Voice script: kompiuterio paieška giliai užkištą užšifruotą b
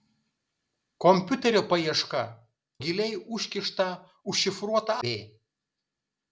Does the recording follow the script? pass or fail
pass